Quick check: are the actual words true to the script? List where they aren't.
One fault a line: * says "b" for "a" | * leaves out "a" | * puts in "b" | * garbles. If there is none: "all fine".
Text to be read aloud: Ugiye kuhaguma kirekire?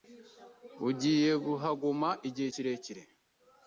* puts in "igihe"